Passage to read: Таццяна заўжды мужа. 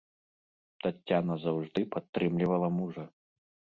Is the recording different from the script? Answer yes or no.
yes